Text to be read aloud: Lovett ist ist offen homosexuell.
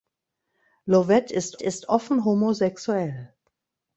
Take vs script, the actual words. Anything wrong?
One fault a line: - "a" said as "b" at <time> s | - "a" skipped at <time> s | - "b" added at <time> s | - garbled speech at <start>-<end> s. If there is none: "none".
none